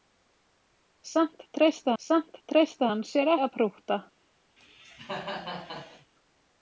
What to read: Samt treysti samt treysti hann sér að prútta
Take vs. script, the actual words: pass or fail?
pass